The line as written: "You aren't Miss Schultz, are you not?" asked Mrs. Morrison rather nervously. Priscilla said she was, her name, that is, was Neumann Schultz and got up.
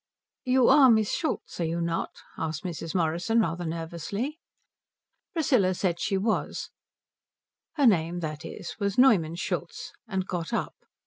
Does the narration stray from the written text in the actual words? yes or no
yes